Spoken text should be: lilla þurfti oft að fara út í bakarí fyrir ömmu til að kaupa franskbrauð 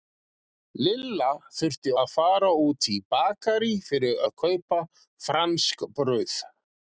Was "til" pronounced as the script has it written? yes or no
no